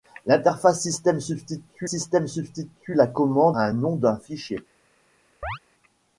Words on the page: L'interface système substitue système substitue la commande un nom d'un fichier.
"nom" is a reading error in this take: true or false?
false